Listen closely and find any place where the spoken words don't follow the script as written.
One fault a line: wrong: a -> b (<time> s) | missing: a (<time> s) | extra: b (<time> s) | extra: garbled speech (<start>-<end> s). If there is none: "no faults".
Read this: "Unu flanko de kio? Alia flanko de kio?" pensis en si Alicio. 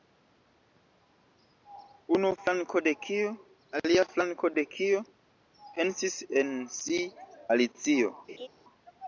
no faults